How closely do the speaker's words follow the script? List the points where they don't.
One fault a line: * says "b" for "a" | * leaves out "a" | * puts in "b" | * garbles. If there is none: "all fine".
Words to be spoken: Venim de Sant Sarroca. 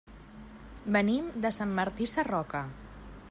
* puts in "Martí"